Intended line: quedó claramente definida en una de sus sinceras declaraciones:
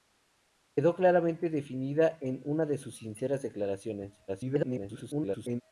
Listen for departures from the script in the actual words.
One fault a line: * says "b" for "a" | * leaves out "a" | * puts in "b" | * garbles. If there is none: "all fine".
* garbles